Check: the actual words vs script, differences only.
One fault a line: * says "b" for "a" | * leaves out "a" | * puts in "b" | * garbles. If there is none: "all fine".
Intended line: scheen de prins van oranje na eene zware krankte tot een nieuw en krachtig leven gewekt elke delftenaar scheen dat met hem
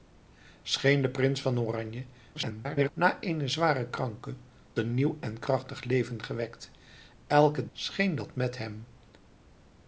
* garbles
* leaves out "tot"
* leaves out "delftenaar"